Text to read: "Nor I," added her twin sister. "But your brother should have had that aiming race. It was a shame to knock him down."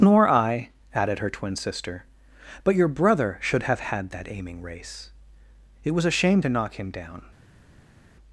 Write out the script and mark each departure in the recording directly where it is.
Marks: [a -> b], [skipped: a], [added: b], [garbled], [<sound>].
"Nor I," added her twin sister. "But your brother should have had that aiming race. It was a shame to knock him down."